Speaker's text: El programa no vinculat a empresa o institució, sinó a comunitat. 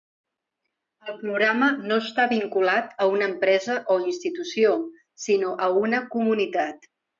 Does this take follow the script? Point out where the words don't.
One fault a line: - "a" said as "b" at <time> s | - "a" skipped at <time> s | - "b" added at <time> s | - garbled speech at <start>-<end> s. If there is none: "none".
- "està" added at 2.0 s
- "una" added at 3.2 s
- "una" added at 5.8 s